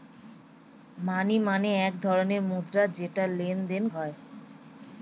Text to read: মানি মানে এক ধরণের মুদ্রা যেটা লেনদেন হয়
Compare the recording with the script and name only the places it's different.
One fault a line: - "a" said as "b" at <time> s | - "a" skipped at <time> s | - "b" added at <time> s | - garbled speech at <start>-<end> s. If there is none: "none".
none